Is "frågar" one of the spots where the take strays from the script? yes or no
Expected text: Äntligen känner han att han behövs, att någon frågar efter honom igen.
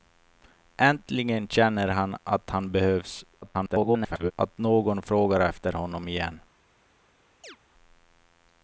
no